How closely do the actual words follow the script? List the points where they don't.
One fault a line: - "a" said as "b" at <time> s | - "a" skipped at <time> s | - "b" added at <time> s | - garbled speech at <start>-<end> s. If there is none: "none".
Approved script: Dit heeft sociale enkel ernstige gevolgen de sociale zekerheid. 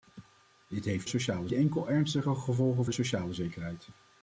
none